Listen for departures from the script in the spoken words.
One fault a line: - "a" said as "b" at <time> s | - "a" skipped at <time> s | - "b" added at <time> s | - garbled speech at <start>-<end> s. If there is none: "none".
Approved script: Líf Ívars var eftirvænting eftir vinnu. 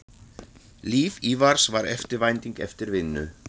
none